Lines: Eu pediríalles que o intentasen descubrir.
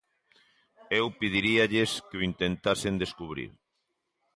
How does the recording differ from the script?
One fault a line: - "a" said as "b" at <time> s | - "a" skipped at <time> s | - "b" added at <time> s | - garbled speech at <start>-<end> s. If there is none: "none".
none